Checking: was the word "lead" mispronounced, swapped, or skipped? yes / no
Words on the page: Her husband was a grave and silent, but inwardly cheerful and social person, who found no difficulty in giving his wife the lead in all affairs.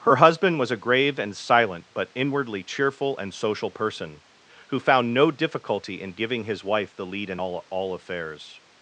no